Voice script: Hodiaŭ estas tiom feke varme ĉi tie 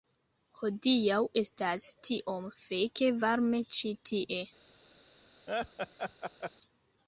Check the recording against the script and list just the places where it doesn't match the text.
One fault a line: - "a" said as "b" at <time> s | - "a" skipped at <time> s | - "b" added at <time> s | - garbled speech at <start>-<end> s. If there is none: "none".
none